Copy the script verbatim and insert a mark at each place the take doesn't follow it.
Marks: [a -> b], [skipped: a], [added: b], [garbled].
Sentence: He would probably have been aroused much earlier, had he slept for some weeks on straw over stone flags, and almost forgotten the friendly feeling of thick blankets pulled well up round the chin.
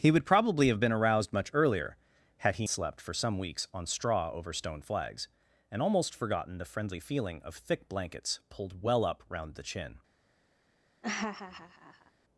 He would probably have been aroused much earlier, had he slept for some weeks on straw over stone flags, and almost forgotten the friendly feeling of thick blankets pulled well up round the chin.